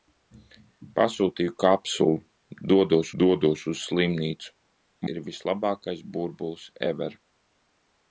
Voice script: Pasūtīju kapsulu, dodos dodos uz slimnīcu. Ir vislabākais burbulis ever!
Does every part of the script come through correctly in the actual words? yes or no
yes